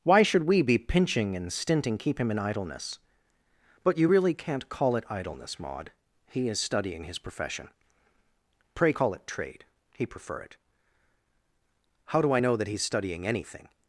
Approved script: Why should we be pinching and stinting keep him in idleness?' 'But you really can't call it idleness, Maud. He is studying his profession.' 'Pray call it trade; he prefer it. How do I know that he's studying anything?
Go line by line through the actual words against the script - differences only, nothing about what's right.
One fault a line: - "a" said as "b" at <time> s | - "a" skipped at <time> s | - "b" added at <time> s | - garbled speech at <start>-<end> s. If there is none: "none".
none